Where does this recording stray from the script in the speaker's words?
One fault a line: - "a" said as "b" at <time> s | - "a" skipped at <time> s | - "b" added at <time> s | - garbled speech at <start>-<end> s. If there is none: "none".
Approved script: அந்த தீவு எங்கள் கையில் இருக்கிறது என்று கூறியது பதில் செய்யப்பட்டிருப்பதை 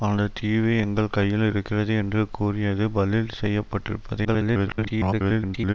- garbled speech at 4.2-5.7 s